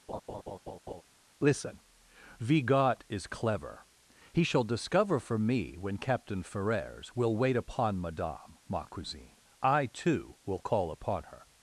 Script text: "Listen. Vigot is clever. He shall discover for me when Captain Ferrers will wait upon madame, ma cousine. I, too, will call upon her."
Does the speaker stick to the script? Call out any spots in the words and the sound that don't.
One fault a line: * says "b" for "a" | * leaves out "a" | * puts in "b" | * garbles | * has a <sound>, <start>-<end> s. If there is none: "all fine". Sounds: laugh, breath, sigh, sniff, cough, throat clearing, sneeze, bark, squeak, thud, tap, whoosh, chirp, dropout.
* has a laugh, 0.1-1.0 s